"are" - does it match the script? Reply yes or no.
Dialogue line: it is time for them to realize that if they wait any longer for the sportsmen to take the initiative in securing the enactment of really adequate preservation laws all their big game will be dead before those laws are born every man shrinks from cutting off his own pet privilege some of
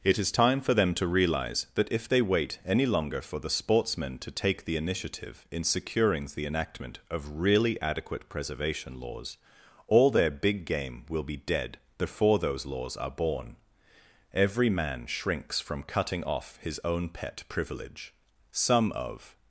yes